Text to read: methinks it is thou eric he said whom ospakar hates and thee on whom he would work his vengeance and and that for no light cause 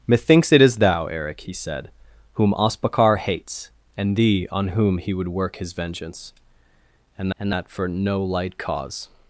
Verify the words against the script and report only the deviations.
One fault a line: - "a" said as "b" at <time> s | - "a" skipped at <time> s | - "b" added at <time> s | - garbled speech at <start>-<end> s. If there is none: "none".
none